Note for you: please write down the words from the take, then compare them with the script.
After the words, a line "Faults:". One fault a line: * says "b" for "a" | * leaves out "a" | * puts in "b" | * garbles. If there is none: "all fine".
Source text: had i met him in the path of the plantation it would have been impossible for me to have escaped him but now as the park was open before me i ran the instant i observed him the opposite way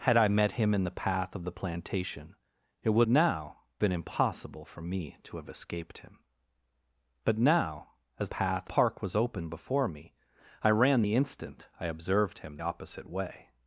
had i met him in the path of the plantation it would now been impossible for me to have escaped him but now as path park was open before me i ran the instant i observed him opposite way
Faults:
* says "now" for "have"
* says "path" for "the"
* leaves out "the"